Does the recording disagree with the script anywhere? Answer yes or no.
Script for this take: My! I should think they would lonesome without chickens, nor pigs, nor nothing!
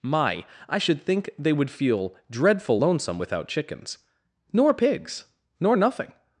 yes